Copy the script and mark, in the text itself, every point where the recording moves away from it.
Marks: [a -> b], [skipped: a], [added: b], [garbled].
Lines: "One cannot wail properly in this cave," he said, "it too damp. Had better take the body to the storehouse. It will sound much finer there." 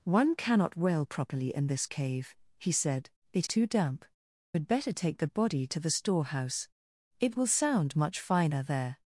"One cannot wail properly in this cave," he said, "it too damp. Had better take the body to the storehouse. It will sound much finer there."